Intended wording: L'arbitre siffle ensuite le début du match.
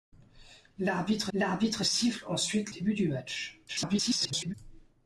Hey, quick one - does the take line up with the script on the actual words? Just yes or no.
no